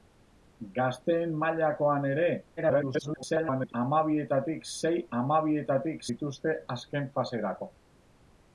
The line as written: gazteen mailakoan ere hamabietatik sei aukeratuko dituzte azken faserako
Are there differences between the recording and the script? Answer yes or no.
yes